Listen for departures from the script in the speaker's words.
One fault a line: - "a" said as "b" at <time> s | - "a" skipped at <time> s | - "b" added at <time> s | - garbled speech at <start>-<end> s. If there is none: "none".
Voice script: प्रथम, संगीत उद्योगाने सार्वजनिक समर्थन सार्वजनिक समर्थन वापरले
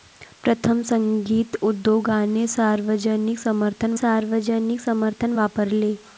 none